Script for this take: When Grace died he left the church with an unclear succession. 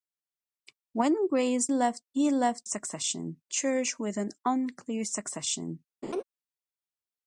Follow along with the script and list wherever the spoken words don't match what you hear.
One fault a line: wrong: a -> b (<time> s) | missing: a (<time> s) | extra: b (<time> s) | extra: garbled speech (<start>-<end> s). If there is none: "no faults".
wrong: died -> left (1.7 s)
wrong: the -> succession (2.6 s)